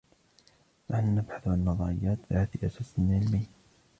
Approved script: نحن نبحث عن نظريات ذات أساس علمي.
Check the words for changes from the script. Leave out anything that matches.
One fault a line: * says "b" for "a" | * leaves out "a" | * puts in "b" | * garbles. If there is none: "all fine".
all fine